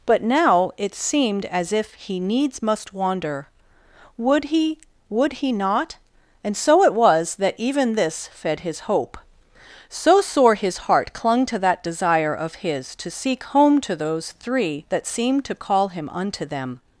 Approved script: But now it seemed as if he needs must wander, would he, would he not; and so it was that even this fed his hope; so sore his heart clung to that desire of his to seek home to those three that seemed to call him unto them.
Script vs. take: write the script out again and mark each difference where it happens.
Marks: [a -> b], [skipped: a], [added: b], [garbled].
But now it seemed as if he needs must wander, would he, would he not; and so it was that even this fed his hope; so sore his heart clung to that desire of his to seek home to those three that seemed to call him unto them.